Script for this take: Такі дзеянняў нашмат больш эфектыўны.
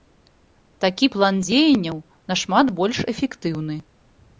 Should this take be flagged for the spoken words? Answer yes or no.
yes